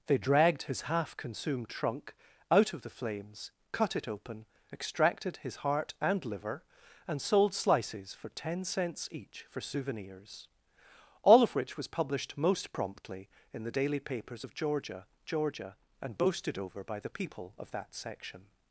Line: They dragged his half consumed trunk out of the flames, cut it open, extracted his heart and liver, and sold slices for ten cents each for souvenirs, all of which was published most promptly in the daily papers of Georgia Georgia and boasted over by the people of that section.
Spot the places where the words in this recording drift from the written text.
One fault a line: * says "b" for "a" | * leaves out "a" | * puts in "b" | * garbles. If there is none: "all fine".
all fine